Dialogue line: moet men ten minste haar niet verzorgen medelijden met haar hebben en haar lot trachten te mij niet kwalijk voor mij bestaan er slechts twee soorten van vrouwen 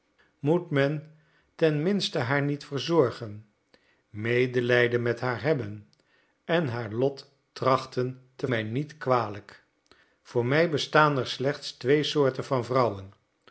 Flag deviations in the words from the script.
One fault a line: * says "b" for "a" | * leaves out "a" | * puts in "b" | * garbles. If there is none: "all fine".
all fine